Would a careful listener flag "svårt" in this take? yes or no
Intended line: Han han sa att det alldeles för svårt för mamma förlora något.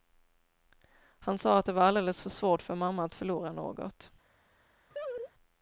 no